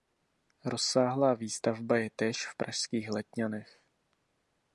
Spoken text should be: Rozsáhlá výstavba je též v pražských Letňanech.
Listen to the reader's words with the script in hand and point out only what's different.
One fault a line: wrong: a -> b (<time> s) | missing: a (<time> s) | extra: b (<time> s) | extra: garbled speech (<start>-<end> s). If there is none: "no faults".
no faults